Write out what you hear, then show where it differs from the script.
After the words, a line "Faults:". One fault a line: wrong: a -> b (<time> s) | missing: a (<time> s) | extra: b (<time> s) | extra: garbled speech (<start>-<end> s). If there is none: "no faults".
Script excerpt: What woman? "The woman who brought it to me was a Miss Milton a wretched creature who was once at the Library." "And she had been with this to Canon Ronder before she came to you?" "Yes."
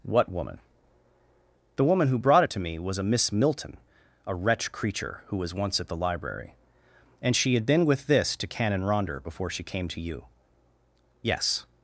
What woman? "The woman who brought it to me was a Miss Milton a wretch creature who was once at the Library." "And she had been with this to Canon Ronder before she came to you?" "Yes."
Faults:
wrong: wretched -> wretch (4.4 s)